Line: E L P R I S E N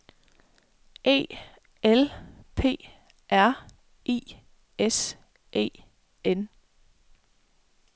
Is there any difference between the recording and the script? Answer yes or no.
no